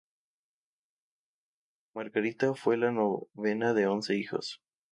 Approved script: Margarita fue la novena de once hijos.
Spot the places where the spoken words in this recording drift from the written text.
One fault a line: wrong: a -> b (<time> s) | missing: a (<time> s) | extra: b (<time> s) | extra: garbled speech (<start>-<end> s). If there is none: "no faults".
no faults